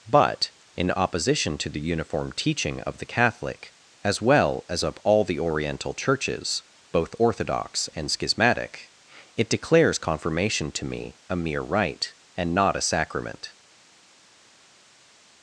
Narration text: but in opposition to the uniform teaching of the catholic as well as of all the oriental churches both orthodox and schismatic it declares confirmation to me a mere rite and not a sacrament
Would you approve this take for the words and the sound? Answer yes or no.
yes